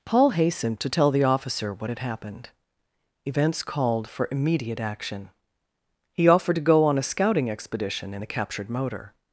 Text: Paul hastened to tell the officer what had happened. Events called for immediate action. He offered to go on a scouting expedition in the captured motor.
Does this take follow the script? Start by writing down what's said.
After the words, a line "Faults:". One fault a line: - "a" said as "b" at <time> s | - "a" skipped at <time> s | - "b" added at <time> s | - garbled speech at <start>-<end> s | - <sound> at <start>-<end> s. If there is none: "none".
Paul hastened to tell the officer what had happened. Events called for immediate action. He offered to go on a scouting expedition in the captured motor.
Faults:
none